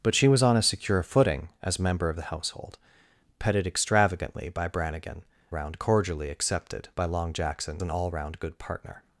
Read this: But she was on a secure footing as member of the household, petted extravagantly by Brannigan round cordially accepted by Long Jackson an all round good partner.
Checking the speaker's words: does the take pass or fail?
pass